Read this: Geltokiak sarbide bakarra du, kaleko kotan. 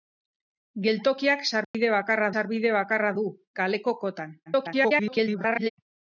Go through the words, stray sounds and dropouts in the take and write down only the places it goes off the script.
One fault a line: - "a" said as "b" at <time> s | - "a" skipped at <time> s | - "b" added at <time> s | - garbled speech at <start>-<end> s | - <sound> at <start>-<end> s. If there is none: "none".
- dropout at 1.6-1.7 s
- "sarbide bakarra" added at 2.3 s
- garbled speech at 4.5-5.7 s